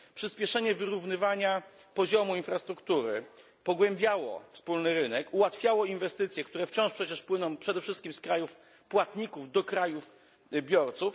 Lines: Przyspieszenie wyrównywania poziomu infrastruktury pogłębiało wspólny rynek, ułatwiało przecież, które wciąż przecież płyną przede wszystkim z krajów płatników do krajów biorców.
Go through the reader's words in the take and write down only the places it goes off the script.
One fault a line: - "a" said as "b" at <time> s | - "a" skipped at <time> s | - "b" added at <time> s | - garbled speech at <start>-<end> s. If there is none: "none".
- "przecież" said as "inwestycje" at 5.8 s